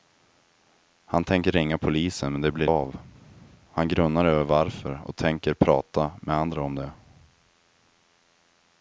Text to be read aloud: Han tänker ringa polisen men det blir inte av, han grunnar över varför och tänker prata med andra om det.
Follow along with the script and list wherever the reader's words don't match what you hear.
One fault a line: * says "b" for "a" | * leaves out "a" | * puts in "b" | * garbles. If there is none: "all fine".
* leaves out "inte"